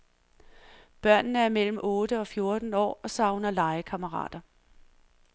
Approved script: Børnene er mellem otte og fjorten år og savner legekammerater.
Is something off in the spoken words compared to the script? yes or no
no